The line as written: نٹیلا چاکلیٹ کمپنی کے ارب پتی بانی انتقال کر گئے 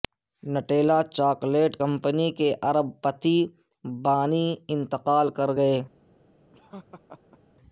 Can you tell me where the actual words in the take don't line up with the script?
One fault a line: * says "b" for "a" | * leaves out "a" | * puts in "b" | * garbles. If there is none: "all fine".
all fine